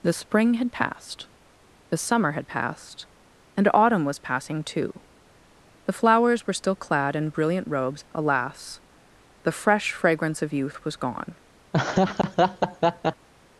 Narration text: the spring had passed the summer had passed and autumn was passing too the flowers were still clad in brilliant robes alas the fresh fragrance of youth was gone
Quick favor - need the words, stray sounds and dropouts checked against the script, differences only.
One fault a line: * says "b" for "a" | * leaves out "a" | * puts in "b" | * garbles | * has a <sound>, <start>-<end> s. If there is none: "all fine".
* has a laugh, 11.7-13.3 s